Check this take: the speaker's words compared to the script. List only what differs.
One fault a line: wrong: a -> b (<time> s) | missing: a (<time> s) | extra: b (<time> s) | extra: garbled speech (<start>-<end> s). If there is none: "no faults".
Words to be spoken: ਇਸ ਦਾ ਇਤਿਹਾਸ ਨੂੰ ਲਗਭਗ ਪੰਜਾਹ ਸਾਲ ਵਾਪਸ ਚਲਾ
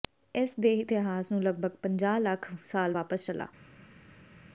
wrong: ਦਾ -> ਦੇ (0.6 s)
extra: ਲੱਖ (2.2 s)